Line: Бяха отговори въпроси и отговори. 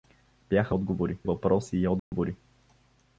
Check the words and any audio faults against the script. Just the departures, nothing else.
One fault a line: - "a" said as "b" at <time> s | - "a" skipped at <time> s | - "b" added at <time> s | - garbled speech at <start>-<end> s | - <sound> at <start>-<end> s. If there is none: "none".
- dropout at 2.0-2.1 s